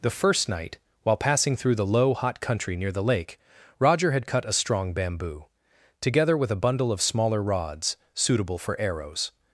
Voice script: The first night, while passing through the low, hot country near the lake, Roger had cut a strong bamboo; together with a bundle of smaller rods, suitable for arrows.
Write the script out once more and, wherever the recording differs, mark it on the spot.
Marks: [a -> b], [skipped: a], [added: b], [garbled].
The first night, while passing through the low, hot country near the lake, Roger had cut a strong bamboo; together with a bundle of smaller rods, suitable for arrows.